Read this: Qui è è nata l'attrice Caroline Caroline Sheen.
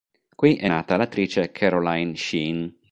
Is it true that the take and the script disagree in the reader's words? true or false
true